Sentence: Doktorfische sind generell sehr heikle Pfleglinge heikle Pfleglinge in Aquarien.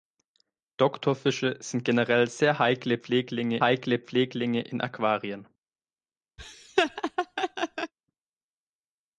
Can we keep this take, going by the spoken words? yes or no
yes